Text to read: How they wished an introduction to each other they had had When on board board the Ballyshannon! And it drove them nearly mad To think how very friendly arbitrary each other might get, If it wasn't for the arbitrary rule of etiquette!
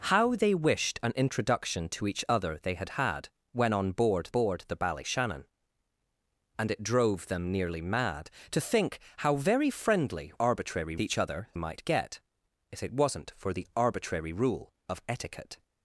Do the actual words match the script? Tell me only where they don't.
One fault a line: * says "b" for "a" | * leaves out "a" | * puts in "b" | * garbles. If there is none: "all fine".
all fine